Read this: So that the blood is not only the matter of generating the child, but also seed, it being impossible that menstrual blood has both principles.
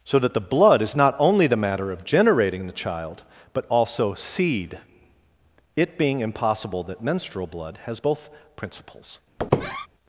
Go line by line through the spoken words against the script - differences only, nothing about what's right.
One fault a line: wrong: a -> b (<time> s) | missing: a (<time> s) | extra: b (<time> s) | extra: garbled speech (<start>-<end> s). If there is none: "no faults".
no faults